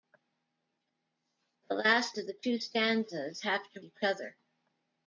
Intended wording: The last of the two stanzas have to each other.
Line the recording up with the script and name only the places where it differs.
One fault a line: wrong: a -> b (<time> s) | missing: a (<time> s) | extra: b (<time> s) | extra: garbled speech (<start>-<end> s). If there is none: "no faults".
no faults